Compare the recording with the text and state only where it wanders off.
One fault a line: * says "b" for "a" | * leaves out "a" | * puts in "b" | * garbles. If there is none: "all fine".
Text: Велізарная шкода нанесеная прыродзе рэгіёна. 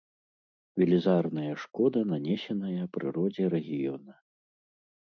all fine